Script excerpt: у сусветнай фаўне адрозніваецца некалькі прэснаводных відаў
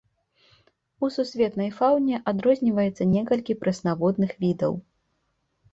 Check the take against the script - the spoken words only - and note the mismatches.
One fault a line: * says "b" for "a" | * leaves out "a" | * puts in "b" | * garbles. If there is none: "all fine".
all fine